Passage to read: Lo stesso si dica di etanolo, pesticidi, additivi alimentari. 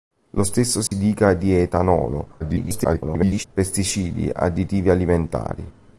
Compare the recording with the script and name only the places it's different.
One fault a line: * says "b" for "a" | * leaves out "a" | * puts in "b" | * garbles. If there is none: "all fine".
* garbles